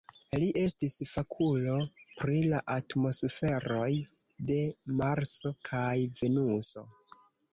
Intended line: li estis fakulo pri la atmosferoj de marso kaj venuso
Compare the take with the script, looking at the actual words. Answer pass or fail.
pass